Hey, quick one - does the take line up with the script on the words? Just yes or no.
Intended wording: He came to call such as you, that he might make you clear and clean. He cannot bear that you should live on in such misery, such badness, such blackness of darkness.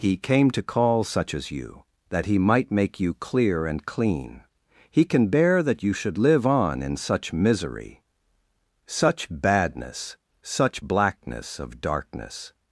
no